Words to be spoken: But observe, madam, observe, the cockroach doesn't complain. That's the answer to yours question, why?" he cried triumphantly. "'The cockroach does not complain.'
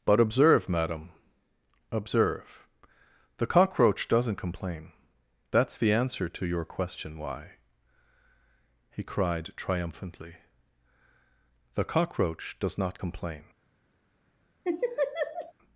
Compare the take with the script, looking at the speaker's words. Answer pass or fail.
fail